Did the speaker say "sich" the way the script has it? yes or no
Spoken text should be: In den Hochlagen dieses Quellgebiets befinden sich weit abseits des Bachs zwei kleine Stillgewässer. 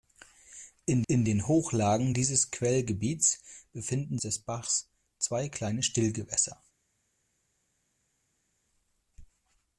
no